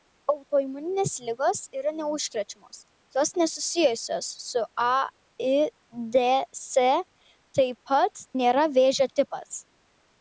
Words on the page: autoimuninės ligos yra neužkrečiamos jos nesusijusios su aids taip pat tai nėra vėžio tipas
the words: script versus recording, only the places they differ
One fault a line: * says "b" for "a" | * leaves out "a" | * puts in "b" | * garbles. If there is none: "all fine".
* leaves out "tai"